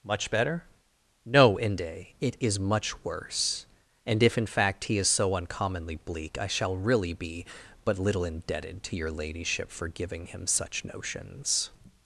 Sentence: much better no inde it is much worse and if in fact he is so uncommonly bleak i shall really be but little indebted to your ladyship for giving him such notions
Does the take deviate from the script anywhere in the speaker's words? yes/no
no